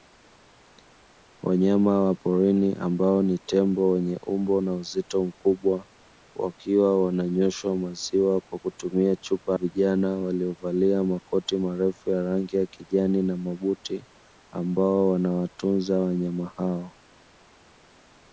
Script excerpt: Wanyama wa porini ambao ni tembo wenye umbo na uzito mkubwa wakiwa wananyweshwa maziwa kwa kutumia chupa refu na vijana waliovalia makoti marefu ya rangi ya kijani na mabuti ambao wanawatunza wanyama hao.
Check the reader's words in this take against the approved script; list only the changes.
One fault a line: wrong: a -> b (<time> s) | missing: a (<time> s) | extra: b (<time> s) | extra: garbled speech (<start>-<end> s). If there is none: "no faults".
missing: refu na (9.6 s)